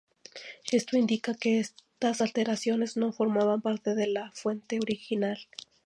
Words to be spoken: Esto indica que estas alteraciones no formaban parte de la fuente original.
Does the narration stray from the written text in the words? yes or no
no